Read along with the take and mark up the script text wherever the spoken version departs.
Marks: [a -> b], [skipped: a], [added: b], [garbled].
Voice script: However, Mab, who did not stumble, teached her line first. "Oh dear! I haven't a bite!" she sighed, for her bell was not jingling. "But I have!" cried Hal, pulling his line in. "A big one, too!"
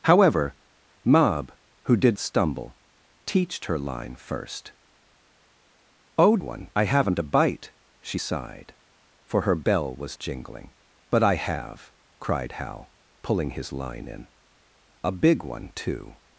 However, Mab, who did [skipped: not] stumble, teached her line first. "Oh [dear! -> one] I haven't a bite!" she sighed, for her bell was [skipped: not] jingling. "But I have!" cried Hal, pulling his line in. "A big one, too!"